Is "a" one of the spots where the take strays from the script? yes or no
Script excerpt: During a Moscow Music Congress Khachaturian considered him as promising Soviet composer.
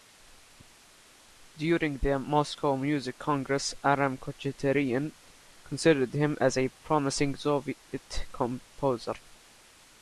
yes